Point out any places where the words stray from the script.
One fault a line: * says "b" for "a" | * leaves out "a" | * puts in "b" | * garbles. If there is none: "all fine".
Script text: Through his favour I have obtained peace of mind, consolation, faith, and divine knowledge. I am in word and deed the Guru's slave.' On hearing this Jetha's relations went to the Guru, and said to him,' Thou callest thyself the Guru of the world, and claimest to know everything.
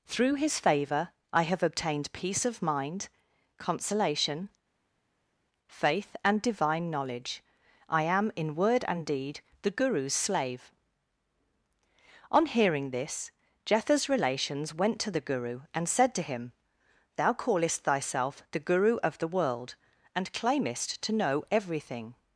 all fine